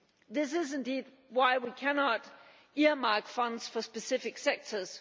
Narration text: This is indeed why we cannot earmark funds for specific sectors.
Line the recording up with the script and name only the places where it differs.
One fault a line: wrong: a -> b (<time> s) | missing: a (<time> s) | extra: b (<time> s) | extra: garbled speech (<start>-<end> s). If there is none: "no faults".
no faults